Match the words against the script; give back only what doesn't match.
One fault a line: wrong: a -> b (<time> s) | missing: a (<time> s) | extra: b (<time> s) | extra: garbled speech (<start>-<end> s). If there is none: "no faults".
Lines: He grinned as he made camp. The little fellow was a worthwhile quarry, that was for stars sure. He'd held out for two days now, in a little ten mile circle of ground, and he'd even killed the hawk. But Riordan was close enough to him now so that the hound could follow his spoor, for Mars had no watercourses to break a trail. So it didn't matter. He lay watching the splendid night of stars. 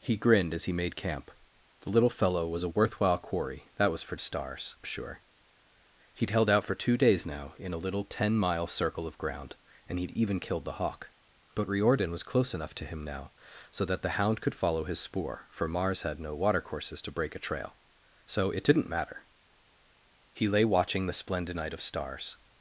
no faults